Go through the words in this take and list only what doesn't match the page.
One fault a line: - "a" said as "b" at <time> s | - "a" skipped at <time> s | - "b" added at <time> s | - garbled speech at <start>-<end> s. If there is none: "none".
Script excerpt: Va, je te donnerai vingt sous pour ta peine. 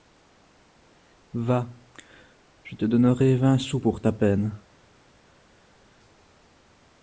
none